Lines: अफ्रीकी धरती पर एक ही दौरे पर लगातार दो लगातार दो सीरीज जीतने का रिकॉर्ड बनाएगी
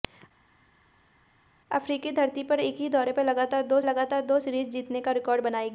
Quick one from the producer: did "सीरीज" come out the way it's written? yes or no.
yes